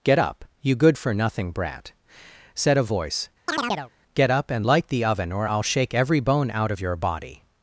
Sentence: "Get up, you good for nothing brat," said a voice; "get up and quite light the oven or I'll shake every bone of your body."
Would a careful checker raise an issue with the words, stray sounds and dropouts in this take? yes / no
yes